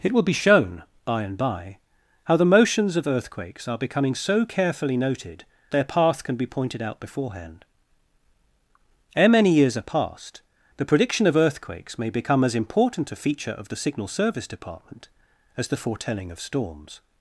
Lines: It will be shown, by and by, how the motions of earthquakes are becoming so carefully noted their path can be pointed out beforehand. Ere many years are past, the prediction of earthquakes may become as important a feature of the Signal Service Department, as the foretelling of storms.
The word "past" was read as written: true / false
true